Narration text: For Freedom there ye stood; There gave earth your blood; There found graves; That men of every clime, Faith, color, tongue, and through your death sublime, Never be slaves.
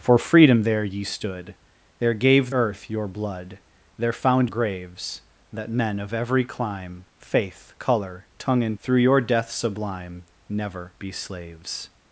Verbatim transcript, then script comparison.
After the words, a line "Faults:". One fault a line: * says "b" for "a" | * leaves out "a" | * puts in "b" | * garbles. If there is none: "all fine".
For Freedom there ye stood; There gave earth your blood; There found graves; That men of every clime, Faith, color, tongue, and through your death sublime, Never be slaves.
Faults:
all fine